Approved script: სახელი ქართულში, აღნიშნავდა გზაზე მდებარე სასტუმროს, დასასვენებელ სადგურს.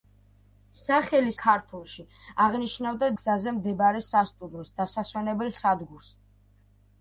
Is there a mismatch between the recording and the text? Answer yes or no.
no